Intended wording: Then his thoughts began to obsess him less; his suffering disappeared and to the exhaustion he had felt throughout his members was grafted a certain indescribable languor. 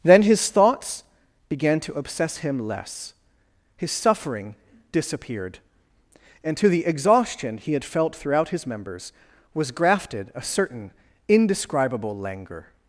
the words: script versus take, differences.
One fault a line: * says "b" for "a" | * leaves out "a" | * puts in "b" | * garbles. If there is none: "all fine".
all fine